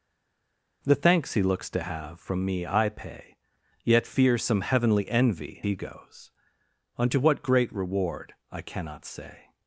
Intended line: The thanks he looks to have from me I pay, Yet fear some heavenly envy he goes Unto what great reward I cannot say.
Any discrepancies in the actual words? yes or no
no